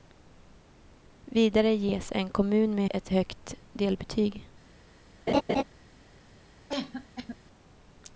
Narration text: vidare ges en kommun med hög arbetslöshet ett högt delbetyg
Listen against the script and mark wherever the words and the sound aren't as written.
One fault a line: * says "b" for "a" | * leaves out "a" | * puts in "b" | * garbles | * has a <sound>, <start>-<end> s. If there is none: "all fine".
* leaves out "hög arbetslöshet"
* has a laugh, 5.3-5.6 s
* has a cough, 6.7-7.4 s